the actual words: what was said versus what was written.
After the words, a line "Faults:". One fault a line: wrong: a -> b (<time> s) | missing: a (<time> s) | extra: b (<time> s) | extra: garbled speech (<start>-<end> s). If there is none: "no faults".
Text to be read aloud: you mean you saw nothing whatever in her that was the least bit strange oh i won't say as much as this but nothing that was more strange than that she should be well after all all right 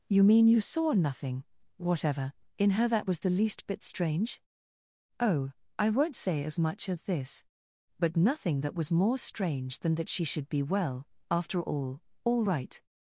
you mean you saw nothing whatever in her that was the least bit strange oh i won't say as much as this but nothing that was more strange than that she should be well after all all right
Faults:
no faults